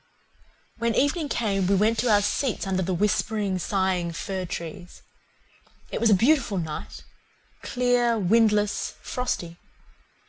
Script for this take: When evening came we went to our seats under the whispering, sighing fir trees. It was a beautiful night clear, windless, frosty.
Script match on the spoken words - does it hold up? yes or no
yes